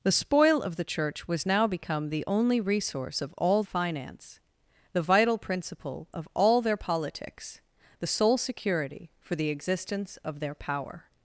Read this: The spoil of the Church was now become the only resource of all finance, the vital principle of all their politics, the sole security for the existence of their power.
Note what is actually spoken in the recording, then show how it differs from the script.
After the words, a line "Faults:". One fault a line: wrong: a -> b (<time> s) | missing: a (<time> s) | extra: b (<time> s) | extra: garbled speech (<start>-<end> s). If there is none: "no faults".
The spoil of the Church was now become the only resource of all finance, the vital principle of all their politics, the sole security for the existence of their power.
Faults:
no faults